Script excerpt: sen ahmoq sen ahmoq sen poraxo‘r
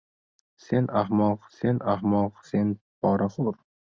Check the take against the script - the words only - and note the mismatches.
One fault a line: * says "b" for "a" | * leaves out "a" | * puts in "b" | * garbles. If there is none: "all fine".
all fine